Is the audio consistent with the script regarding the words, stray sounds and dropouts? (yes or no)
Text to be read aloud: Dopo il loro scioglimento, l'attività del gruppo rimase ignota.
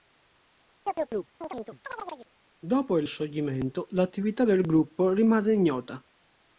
no